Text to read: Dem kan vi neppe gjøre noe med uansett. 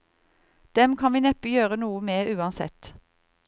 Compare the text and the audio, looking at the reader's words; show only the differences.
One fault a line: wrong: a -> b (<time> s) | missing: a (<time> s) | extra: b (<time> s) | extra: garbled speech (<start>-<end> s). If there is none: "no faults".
no faults